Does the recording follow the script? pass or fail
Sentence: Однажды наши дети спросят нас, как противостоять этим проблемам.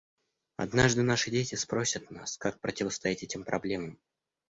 pass